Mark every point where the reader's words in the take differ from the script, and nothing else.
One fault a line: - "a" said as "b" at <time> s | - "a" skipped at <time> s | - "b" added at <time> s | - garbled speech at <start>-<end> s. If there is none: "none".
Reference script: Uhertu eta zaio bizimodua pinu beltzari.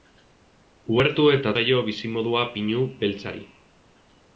none